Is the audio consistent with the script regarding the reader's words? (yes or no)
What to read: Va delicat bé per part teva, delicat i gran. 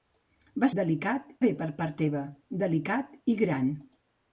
yes